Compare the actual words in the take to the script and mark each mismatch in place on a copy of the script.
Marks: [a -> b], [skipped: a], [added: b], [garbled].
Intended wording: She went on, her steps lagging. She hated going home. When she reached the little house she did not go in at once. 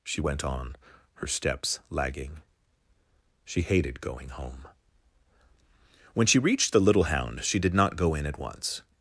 She went on, her steps lagging. She hated going home. When she reached the little [house -> hound] she did not go in at once.